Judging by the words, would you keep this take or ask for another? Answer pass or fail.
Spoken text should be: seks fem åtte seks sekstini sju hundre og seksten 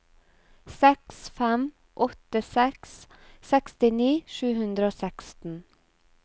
pass